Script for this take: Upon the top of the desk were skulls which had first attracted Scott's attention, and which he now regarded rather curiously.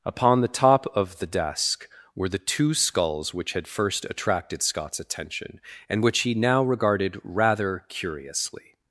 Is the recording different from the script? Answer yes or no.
yes